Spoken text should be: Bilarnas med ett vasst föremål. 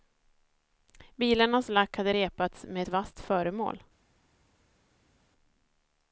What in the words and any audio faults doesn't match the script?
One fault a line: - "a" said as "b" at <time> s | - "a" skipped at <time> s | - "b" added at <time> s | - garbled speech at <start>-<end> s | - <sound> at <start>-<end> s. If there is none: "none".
- "lack hade repats" added at 1.7 s